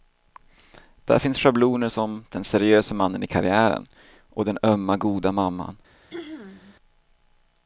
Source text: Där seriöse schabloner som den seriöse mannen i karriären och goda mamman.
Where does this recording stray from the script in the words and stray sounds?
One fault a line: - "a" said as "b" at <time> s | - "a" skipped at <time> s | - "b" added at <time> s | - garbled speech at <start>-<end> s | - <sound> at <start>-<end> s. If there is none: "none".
- "seriöse" said as "finns" at 1.2 s
- "den ömma" added at 4.5 s
- throat clearing at 6.1-6.8 s